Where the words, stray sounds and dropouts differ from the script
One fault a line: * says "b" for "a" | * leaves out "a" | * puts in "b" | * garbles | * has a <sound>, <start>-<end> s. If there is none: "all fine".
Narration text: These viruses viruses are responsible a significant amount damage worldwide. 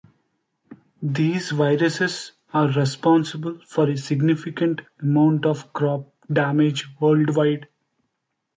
* leaves out "viruses"
* puts in "for"
* puts in "of crop"